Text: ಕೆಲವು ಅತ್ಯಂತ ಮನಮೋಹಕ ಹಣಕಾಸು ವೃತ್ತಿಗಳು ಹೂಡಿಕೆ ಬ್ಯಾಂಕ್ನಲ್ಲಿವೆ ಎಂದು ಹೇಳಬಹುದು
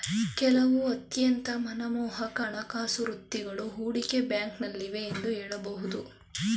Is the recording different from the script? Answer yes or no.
no